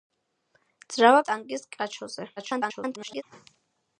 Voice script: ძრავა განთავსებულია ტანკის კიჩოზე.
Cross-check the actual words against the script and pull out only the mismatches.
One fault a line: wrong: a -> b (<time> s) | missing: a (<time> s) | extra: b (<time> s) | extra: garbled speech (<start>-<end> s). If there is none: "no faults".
missing: განთავსებულია (1.2 s)
extra: garbled speech (2.4-3.2 s)